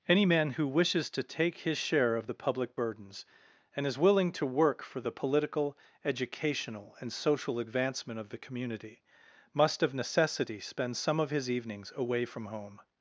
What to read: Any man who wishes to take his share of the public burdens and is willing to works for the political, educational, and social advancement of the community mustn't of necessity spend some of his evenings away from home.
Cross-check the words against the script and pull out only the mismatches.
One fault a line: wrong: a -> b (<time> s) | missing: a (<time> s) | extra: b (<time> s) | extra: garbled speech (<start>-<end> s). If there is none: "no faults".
wrong: works -> work (4.4 s)
wrong: mustn't -> must (9.5 s)